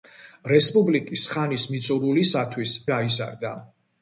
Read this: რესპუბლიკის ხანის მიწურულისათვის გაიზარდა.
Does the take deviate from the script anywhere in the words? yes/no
no